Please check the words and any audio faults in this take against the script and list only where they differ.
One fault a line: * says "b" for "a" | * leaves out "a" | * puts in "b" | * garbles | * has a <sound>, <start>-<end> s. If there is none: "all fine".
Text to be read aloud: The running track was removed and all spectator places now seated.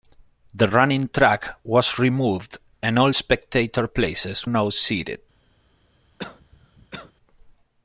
* has a cough, 6.2-7.1 s